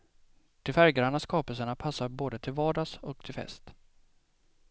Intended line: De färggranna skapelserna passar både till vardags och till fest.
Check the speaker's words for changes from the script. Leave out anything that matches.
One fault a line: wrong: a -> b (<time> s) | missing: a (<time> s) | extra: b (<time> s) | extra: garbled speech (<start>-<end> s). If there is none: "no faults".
no faults